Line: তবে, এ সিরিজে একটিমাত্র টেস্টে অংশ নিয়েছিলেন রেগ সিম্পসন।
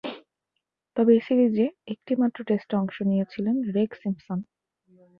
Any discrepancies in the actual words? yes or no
no